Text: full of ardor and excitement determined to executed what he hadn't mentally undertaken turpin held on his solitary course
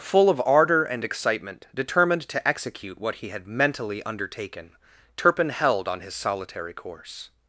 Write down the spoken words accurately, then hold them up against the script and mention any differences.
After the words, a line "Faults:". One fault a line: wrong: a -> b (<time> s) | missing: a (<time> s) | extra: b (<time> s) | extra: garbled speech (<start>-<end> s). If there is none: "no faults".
full of ardor and excitement determined to execute what he had mentally undertaken turpin held on his solitary course
Faults:
wrong: executed -> execute (2.5 s)
wrong: hadn't -> had (3.3 s)